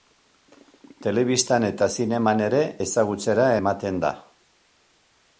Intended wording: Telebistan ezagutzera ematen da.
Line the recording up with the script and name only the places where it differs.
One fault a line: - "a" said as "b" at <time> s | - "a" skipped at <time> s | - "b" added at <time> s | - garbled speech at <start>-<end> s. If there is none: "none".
- "eta zineman ere" added at 1.7 s